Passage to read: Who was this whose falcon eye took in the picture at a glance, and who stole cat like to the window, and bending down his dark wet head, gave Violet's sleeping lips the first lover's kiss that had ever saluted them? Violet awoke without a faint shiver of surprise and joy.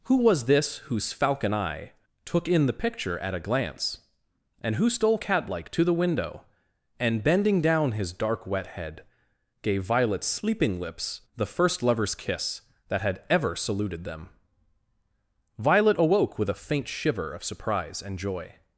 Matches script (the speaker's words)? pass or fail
fail